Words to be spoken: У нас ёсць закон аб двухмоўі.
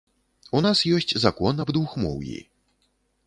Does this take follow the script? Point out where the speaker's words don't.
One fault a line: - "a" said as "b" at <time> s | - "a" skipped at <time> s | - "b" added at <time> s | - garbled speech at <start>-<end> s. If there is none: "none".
none